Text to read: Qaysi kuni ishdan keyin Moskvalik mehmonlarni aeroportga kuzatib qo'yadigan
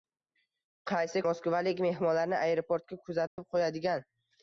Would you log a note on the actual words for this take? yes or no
yes